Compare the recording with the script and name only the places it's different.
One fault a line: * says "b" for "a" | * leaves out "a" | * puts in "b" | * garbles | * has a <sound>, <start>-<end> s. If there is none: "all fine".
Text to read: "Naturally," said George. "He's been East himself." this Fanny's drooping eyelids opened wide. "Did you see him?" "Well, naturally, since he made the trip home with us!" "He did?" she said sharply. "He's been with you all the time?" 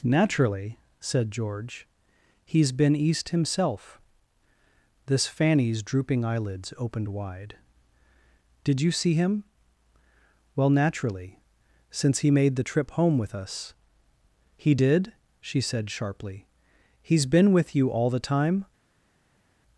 all fine